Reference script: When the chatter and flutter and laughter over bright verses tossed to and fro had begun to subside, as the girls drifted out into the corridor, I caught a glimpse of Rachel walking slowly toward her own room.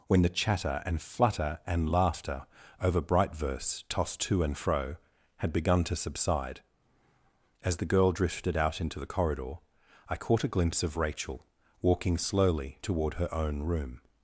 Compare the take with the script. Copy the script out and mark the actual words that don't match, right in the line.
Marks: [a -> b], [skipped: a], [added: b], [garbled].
When the chatter and flutter and laughter over bright [verses -> verse] tossed to and fro had begun to subside, as the [girls -> girl] drifted out into the corridor, I caught a glimpse of Rachel walking slowly toward her own room.